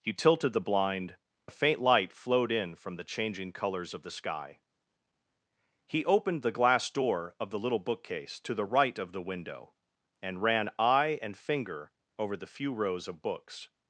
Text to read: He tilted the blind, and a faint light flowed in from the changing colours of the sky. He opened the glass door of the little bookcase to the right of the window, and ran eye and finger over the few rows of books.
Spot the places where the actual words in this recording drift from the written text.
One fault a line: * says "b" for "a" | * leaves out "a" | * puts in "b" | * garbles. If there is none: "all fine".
* leaves out "and"